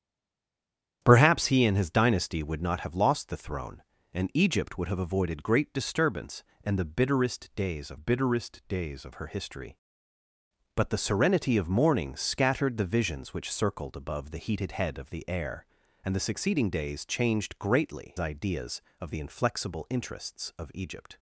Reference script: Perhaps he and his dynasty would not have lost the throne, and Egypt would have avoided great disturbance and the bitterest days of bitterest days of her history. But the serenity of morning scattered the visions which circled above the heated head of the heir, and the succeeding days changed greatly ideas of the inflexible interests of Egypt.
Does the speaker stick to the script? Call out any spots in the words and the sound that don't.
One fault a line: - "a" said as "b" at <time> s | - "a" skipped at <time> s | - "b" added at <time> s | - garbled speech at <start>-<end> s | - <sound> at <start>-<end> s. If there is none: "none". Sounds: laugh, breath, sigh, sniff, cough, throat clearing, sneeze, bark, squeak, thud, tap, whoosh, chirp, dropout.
none